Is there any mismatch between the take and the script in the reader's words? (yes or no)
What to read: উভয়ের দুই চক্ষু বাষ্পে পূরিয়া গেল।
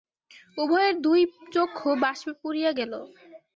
no